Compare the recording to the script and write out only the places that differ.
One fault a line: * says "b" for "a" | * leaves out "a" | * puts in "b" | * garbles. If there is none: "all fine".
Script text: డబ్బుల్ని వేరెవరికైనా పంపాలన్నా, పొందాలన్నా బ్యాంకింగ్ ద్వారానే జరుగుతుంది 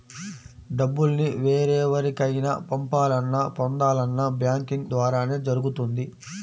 all fine